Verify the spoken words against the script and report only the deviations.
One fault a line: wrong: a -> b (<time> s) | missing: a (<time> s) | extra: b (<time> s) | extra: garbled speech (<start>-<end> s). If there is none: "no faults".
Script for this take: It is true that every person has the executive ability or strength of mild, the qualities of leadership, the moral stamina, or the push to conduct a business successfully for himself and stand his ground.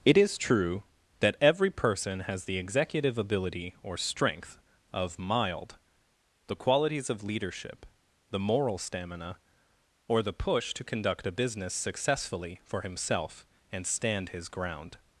no faults